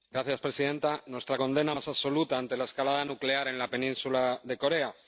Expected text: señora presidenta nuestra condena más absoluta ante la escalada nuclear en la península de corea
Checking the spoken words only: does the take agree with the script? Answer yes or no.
yes